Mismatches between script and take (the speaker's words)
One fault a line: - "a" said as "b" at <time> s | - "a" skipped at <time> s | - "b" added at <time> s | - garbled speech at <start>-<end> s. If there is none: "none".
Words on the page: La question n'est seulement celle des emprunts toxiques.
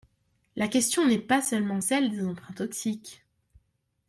- "pas" added at 1.2 s